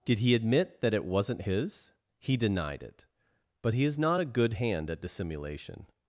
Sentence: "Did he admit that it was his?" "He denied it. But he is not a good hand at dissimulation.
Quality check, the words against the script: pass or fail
fail